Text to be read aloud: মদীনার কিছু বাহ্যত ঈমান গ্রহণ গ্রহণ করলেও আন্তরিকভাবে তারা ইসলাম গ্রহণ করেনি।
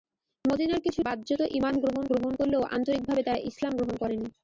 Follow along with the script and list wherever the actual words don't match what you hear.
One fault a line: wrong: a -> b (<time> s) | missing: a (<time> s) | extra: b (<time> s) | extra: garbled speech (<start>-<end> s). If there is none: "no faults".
no faults